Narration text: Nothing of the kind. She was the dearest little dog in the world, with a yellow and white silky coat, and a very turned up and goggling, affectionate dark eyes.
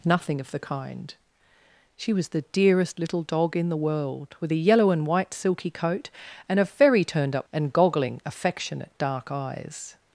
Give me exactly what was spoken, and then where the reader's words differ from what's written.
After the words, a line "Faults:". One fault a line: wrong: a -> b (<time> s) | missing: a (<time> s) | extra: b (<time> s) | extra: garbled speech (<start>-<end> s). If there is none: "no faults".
Nothing of the kind. She was the dearest little dog in the world, with a yellow and white silky coat, and a very turned up and goggling, affectionate dark eyes.
Faults:
no faults